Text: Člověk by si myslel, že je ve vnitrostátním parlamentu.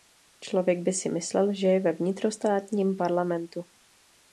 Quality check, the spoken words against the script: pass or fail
pass